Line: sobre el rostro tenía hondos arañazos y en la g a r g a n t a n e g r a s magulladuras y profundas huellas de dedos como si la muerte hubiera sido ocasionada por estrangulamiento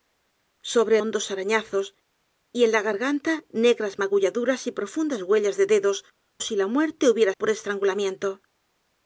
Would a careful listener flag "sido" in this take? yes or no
yes